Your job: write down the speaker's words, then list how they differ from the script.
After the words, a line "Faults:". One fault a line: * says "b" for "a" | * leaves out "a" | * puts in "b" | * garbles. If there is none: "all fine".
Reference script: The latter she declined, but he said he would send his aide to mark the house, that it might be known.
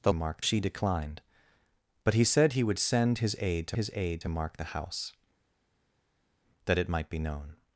The mark she declined, but he said he would send his aide to his aide to mark the house, that it might be known.
Faults:
* says "mark" for "latter"
* puts in "his aide to"